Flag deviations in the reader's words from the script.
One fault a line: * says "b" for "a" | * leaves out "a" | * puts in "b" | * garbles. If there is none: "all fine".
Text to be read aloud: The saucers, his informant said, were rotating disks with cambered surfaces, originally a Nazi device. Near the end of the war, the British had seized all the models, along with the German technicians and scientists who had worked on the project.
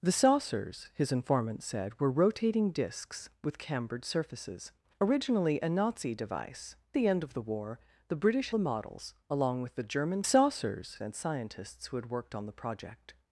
* leaves out "Near"
* leaves out "had seized all"
* says "saucers" for "technicians"